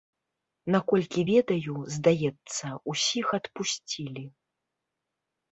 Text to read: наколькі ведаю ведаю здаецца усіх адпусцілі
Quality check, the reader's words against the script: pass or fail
fail